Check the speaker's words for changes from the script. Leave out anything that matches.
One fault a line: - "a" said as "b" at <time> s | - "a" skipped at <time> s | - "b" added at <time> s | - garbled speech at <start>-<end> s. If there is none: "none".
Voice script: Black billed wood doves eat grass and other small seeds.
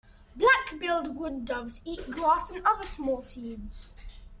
none